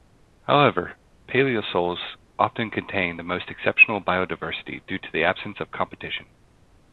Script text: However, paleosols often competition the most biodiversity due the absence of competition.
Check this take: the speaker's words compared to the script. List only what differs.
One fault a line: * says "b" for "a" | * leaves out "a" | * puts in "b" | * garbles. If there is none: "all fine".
* says "contain" for "competition"
* puts in "exceptional"
* puts in "to"